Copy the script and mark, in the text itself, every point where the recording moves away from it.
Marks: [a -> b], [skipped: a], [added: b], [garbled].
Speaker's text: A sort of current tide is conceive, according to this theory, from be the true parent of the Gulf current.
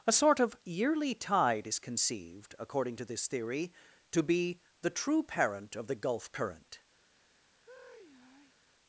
A sort of [current -> yearly] tide is [conceive, -> conceived] according to this theory, [from -> to] be the true parent of the Gulf current.